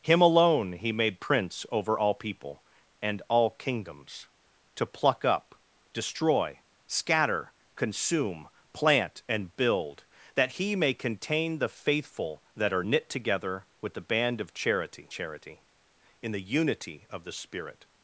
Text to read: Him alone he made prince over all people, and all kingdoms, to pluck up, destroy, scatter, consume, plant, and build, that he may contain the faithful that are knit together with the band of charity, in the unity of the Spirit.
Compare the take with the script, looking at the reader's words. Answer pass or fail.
fail